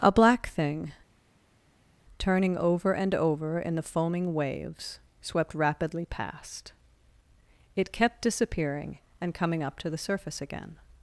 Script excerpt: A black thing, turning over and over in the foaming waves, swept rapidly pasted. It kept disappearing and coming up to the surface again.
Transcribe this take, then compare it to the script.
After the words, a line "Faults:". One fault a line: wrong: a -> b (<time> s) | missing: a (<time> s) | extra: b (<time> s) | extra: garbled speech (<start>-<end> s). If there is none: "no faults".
A black thing, turning over and over in the foaming waves, swept rapidly past. It kept disappearing and coming up to the surface again.
Faults:
wrong: pasted -> past (6.1 s)